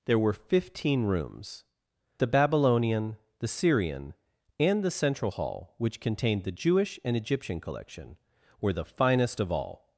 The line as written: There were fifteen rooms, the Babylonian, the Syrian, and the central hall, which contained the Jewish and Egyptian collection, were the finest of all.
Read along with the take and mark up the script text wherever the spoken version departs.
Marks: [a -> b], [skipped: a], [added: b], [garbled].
There were fifteen rooms, the Babylonian, the Syrian, and the central hall, which contained the Jewish and Egyptian collection, were the finest of all.